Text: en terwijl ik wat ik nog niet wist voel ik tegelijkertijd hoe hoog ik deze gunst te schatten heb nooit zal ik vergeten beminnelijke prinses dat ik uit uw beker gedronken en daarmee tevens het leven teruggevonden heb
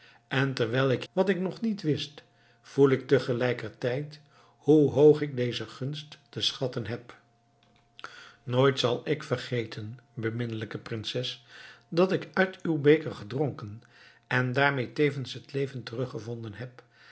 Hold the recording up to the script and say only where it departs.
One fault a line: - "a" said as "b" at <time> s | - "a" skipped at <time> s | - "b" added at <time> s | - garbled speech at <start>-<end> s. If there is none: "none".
none